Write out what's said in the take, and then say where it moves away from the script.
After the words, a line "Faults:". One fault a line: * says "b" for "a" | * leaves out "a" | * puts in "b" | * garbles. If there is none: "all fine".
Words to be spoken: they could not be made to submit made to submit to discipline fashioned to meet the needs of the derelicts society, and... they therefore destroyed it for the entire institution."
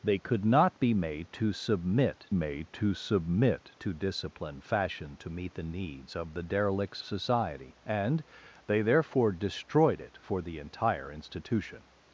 they could not be made to submit made to submit to discipline fashioned to meet the needs of the derelicts society, and... they therefore destroyed it for the entire institution."
Faults:
all fine